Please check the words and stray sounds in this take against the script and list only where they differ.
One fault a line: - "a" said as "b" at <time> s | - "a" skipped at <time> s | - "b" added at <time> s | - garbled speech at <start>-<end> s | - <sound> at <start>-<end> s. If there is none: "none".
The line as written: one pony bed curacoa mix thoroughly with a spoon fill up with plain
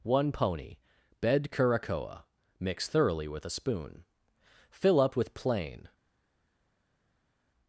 none